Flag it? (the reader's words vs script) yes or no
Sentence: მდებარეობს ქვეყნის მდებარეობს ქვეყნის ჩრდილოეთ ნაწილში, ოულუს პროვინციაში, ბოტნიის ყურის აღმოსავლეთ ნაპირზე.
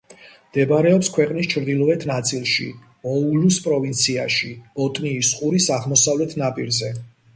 yes